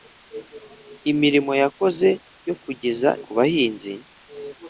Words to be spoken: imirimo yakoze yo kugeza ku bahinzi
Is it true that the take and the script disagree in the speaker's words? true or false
false